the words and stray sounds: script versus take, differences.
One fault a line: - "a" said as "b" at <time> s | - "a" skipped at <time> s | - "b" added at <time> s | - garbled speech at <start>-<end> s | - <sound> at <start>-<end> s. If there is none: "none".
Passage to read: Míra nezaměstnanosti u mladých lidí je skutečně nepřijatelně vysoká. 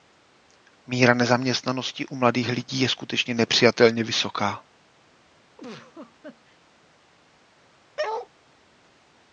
- laugh at 5.6-6.6 s
- bark at 8.0-8.3 s